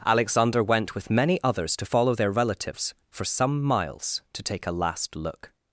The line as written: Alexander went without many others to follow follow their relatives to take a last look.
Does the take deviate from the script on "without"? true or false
true